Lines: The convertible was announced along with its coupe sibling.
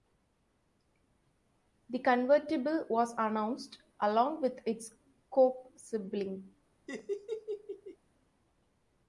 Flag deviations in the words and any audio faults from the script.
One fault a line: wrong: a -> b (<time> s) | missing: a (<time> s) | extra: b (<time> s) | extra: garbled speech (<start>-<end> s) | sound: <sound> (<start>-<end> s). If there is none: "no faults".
sound: laugh (6.9-8.0 s)